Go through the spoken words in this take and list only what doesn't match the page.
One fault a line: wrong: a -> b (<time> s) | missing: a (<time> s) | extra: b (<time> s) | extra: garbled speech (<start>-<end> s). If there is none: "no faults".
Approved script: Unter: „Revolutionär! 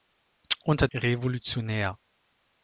no faults